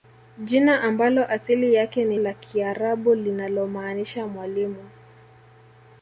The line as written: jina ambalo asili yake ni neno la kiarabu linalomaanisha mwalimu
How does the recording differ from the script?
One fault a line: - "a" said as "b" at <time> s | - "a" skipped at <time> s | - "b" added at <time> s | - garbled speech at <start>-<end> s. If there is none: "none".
- "neno" skipped at 2.2 s